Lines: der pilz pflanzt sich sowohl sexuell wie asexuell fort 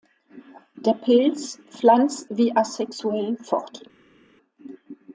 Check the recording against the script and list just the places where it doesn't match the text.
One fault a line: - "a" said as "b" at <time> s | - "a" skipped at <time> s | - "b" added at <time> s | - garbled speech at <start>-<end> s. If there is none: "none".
- "sich sowohl sexuell" skipped at 2.3 s